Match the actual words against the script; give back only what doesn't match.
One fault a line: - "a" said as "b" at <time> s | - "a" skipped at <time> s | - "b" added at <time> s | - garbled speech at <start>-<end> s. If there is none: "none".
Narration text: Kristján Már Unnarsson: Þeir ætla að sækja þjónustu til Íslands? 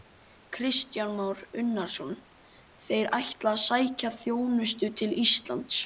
none